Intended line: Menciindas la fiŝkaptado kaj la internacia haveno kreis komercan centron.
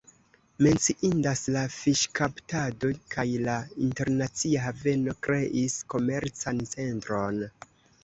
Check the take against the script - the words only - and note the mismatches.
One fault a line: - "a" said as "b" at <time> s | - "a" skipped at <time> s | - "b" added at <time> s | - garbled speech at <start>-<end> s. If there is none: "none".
none